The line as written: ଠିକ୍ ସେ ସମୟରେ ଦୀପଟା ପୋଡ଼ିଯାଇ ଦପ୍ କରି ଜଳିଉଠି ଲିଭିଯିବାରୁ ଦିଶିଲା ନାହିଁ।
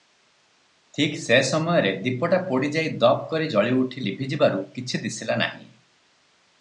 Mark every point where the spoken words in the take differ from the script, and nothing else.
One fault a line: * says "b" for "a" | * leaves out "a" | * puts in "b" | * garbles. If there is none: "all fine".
* puts in "କିଛି"